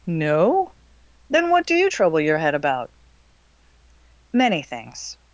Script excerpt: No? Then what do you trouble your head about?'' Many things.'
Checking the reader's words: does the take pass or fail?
pass